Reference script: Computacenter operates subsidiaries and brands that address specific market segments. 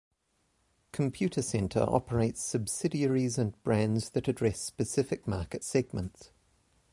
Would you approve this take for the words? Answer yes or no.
yes